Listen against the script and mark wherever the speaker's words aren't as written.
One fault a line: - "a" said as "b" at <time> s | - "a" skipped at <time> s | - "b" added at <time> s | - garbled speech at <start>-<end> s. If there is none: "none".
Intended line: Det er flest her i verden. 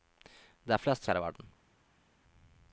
none